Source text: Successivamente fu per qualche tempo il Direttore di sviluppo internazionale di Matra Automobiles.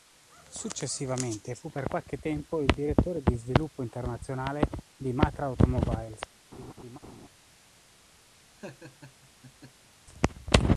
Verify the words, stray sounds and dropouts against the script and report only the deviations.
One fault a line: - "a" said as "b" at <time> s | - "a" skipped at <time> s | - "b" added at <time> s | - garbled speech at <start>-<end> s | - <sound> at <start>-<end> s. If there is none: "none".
- laugh at 6.5-7.3 s
- laugh at 8.6-9.9 s